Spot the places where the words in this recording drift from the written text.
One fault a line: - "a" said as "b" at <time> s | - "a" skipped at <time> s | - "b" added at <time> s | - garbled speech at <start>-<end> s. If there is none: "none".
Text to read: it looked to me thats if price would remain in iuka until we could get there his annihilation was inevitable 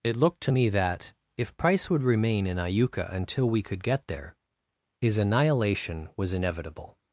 - "thats" said as "that" at 0.7 s